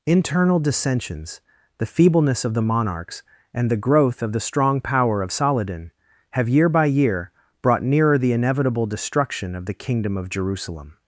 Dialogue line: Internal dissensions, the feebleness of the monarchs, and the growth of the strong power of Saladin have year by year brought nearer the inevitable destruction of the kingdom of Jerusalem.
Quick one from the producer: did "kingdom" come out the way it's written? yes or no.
yes